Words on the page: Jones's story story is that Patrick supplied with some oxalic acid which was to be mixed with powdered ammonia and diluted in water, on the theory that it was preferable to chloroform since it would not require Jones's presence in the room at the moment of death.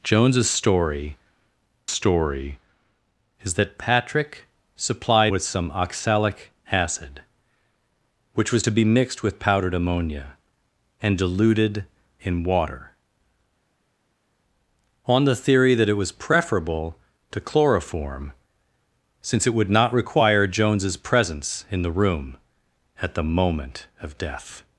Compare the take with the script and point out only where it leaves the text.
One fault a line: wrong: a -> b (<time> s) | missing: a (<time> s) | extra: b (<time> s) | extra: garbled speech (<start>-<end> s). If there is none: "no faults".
no faults